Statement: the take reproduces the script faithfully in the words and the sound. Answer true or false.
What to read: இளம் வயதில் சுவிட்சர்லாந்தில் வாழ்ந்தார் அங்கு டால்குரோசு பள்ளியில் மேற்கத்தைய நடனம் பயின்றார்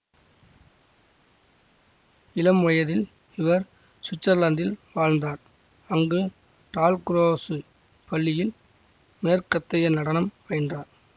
false